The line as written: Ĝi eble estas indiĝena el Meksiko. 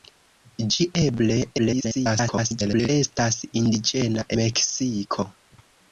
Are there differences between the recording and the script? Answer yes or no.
yes